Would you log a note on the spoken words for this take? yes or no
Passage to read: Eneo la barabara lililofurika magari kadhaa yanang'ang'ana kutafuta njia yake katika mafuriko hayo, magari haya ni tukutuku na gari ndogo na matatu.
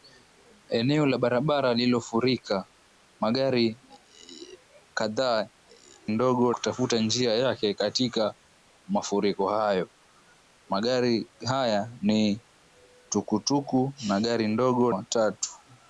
yes